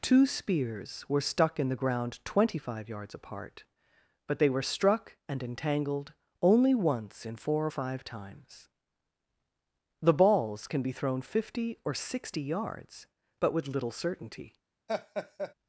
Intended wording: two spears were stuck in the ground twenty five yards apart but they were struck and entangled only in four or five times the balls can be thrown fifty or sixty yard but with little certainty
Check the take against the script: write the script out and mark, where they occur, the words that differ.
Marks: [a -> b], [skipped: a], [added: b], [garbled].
two spears were stuck in the ground twenty five yards apart but they were struck and entangled only [added: once] in four or five times the balls can be thrown fifty or sixty [yard -> yards] but with little certainty